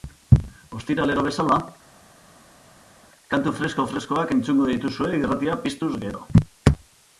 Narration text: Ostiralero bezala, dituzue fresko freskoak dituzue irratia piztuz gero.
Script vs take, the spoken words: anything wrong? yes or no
yes